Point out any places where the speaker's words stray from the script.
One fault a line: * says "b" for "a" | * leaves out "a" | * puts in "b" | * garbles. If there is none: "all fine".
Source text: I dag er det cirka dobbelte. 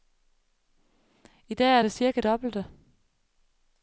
all fine